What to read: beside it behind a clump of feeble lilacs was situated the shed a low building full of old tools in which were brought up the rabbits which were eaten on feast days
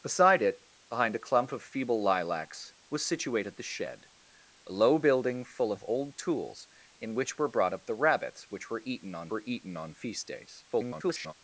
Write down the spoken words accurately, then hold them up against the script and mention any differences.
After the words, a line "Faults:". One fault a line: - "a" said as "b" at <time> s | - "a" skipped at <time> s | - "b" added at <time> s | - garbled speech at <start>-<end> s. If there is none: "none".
beside it behind a clump of feeble lilacs was situated the shed a low building full of old tools in which were brought up the rabbits which were eaten on were eaten on feast days [garbled]
Faults:
- "were eaten on" added at 9.3 s
- garbled speech at 10.7-11.3 s